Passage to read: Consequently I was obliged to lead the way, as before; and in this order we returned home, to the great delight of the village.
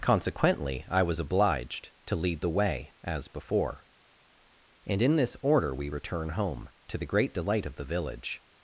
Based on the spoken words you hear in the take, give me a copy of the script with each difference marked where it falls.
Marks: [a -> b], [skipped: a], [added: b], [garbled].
Consequently I was obliged to lead the way, as before; and in this order we [returned -> return] home, to the great delight of the village.